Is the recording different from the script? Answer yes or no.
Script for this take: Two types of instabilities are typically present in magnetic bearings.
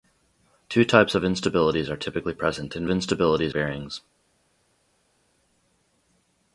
yes